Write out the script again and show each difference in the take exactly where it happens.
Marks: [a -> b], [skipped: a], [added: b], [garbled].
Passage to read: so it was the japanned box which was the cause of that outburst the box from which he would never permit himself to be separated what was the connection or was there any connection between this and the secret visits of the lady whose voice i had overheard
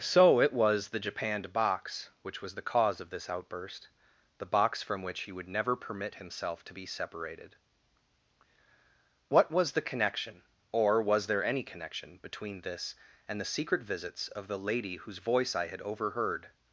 so it was the japanned box which was the cause of [that -> this] outburst the box from which he would never permit himself to be separated what was the connection or was there any connection between this and the secret visits of the lady whose voice i had overheard